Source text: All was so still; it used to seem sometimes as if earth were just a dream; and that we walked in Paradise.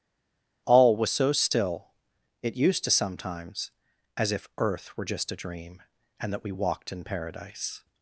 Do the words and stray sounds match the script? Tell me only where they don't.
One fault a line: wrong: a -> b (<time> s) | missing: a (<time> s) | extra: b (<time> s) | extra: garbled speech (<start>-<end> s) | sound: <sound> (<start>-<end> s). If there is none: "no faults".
missing: seem (2.9 s)